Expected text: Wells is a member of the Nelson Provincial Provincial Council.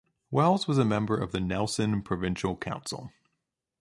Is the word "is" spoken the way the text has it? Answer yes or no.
no